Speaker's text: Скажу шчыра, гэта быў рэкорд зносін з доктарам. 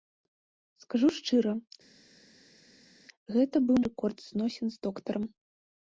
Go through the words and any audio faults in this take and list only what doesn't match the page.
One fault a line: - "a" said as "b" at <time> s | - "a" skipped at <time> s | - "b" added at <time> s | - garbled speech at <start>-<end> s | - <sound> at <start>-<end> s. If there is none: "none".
none